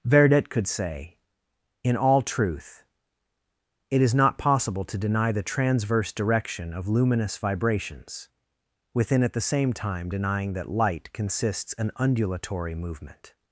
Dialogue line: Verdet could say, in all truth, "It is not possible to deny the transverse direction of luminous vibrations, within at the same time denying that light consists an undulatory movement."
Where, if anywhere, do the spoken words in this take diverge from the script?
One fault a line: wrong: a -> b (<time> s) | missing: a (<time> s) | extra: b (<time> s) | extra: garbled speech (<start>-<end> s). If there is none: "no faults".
no faults